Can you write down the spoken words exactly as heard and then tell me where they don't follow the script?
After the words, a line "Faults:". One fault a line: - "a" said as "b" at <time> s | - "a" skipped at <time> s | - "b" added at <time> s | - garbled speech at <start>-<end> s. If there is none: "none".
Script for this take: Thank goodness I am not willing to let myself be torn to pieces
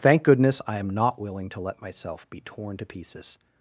Thank goodness I am not willing to let myself be torn to pieces
Faults:
none